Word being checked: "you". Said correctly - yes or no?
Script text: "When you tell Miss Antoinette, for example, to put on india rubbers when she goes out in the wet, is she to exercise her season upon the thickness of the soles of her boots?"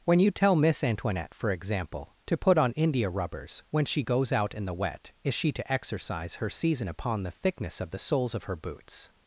yes